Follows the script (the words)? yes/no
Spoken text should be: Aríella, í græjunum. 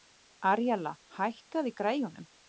no